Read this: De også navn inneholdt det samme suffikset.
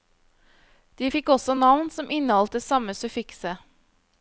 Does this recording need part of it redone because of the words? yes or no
yes